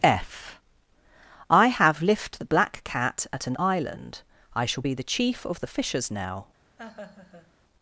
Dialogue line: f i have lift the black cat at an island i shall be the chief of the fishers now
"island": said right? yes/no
yes